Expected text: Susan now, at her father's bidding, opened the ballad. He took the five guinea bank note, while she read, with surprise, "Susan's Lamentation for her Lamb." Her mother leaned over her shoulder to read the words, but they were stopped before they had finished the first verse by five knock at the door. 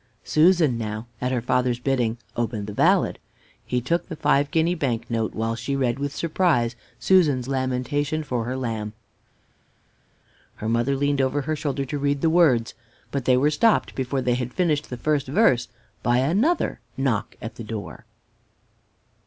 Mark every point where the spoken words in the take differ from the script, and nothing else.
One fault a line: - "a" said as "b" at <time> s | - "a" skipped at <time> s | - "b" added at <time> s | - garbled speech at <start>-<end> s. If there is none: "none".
- "five" said as "another" at 16.2 s